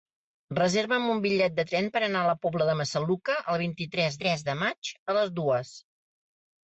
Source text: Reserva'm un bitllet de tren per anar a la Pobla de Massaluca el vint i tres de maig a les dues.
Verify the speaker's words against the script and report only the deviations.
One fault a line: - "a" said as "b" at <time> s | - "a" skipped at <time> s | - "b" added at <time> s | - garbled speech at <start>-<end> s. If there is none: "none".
- "tres" added at 4.3 s